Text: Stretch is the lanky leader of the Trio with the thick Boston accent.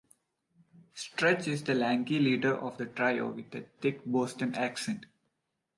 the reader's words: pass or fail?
fail